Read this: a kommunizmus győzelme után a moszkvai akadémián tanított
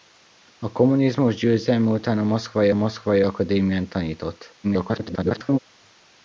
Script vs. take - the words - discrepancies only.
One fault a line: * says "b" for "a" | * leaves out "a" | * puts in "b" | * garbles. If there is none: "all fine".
* puts in "moszkvai"
* garbles